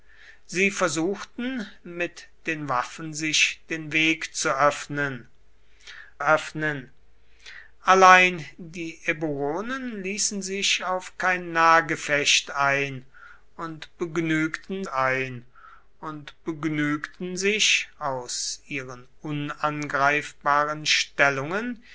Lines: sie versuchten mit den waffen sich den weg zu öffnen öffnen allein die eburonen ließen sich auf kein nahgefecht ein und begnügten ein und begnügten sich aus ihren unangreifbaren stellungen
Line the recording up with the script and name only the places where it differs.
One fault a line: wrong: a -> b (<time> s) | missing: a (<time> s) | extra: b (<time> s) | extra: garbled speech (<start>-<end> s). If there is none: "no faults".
no faults